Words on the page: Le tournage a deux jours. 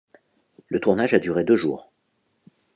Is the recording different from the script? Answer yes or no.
yes